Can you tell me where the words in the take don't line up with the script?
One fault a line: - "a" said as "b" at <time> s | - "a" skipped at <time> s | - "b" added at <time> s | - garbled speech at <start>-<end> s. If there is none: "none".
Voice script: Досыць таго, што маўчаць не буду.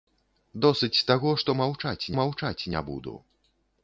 - "маўчаць" added at 2.2 s